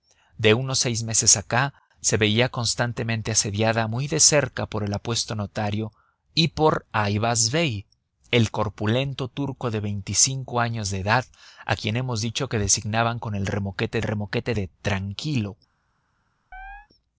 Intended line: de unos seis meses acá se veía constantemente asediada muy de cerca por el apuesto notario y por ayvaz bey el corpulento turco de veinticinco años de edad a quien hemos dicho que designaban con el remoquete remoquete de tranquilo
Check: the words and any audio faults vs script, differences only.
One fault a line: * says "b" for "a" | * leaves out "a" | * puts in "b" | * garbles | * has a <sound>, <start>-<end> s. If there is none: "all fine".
* has a chirp, 16.5-16.9 s